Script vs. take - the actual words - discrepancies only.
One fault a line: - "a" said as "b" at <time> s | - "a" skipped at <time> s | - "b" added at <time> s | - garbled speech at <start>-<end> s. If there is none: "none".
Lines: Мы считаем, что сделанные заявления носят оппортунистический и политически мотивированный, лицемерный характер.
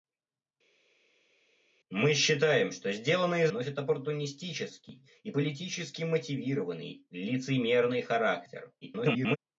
- "заявления" skipped at 3.5 s
- garbled speech at 8.8-9.4 s